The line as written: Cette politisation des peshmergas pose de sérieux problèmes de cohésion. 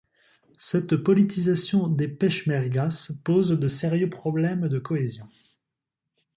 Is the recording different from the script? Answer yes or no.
no